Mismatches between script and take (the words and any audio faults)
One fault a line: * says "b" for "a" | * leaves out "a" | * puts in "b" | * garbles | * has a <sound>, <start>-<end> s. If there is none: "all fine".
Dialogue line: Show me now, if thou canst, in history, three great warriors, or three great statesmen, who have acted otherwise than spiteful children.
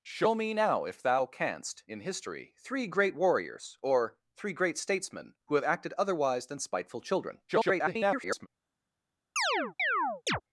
* garbles
* has a chirp, 9.4-10.4 s